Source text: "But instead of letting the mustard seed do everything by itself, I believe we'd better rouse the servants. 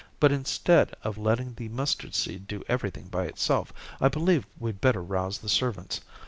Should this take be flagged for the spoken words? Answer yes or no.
no